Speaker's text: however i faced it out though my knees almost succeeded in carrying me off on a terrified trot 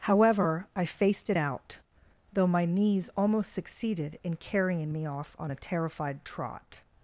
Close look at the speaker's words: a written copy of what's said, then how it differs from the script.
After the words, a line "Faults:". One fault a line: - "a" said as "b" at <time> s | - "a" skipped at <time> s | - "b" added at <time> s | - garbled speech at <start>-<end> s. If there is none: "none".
however i faced it out though my knees almost succeeded in carrying me off on a terrified trot
Faults:
none